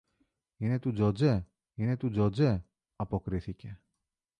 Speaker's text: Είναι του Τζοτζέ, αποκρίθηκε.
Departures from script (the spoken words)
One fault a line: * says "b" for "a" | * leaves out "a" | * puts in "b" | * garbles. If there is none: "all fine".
* puts in "είναι του Τζοτζέ"